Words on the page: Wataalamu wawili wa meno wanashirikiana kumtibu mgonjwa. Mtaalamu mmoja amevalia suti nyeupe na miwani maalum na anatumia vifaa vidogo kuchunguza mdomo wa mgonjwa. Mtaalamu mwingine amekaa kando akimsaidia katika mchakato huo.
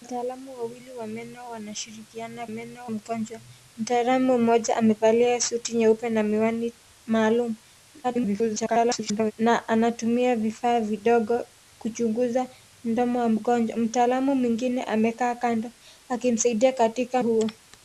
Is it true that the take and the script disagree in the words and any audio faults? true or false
true